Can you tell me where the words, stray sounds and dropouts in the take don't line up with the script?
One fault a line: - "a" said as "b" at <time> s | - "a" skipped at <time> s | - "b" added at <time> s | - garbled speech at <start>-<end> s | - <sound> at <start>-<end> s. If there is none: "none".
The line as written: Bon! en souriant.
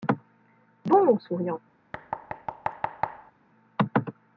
- thud at 1.9-3.3 s